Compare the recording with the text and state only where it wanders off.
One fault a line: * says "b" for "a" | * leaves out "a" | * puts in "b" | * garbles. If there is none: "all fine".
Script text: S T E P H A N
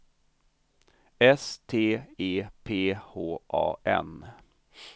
all fine